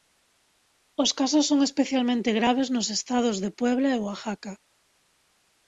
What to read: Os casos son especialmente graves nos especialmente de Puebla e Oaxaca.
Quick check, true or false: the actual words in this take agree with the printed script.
false